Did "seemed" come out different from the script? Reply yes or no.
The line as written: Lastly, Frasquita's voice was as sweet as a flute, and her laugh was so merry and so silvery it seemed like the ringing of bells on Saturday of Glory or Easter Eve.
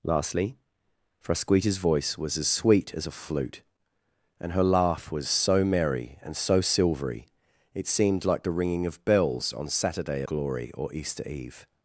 no